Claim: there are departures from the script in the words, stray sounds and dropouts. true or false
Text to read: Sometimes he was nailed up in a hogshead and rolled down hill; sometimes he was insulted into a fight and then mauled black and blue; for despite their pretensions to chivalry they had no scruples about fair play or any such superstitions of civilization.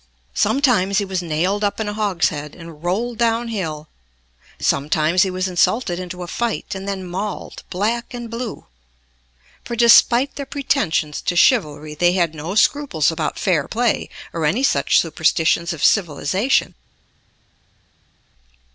false